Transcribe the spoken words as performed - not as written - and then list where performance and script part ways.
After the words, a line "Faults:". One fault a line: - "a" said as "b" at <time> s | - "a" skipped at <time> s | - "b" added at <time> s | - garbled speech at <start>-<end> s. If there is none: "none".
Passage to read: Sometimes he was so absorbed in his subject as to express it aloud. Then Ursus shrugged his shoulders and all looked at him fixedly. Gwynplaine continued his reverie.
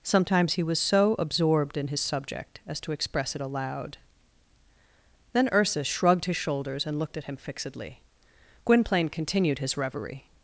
Sometimes he was so absorbed in his subject as to express it aloud. Then Ursus shrugged his shoulders and looked at him fixedly. Gwynplaine continued his reverie.
Faults:
- "all" skipped at 7.0 s